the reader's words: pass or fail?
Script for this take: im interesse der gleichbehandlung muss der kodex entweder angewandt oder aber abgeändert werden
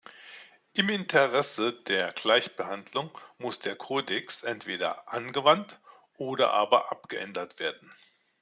pass